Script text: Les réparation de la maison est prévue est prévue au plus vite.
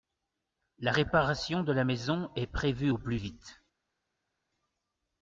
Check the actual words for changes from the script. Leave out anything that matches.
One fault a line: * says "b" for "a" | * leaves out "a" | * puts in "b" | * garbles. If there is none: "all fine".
* says "La" for "Les"
* leaves out "est prévue"